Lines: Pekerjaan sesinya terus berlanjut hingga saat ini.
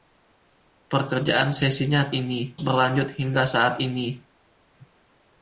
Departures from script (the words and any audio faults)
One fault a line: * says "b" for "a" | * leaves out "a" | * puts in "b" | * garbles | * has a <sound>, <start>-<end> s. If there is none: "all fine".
* says "ini" for "terus"